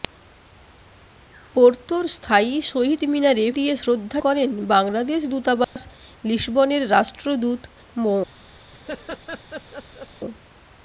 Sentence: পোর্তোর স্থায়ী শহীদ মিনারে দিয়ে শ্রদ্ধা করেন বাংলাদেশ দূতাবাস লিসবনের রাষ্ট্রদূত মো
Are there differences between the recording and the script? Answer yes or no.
no